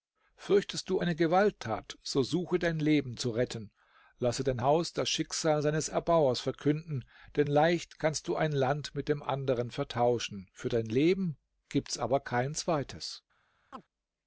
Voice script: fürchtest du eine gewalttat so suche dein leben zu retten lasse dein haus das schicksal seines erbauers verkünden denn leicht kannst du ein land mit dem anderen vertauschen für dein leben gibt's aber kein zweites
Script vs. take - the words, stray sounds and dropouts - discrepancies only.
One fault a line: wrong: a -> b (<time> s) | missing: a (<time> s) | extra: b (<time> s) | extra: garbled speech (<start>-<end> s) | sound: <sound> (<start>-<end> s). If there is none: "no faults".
sound: chirp (13.7-13.8 s)